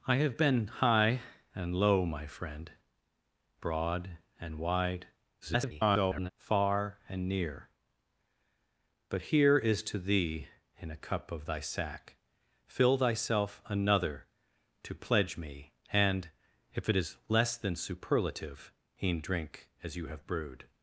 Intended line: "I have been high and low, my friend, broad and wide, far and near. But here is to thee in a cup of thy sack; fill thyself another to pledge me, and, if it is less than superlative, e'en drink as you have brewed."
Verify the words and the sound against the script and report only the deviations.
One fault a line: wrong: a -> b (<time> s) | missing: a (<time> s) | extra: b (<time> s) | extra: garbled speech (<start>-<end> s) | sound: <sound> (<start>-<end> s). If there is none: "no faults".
extra: garbled speech (5.4-6.3 s)